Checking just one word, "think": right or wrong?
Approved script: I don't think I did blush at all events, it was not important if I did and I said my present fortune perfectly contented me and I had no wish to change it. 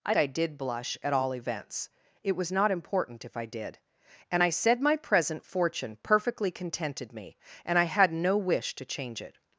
wrong